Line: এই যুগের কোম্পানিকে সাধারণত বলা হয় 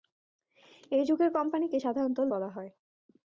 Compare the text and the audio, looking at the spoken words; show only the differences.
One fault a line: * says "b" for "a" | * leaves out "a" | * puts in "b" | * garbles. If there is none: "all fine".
all fine